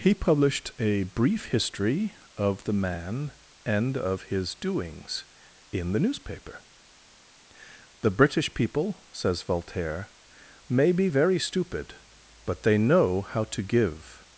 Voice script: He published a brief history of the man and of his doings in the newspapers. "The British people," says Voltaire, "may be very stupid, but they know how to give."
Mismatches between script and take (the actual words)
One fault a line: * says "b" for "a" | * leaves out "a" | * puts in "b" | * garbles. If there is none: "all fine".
* says "newspaper" for "newspapers"